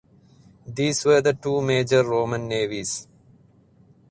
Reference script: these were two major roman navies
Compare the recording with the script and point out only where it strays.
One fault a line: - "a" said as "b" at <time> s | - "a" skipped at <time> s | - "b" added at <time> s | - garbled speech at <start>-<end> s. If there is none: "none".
- "the" added at 1.2 s